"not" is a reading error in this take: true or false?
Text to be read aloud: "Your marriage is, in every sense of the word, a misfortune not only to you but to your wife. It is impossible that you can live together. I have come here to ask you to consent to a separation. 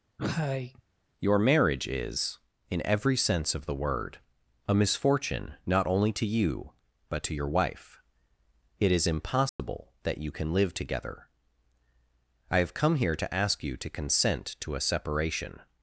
false